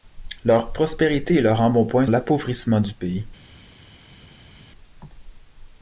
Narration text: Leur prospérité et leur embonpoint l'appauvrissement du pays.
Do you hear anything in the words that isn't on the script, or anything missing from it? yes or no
no